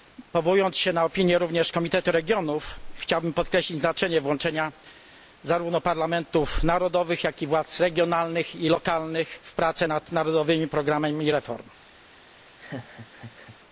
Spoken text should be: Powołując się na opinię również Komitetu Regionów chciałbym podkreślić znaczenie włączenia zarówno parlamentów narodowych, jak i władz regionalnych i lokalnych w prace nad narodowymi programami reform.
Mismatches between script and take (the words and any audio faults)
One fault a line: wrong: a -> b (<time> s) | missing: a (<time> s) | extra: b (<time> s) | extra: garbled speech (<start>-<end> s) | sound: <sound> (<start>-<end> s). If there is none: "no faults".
sound: laugh (12.5-13.6 s)